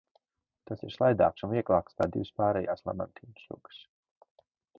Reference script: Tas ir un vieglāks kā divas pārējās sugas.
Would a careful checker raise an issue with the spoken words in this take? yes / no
yes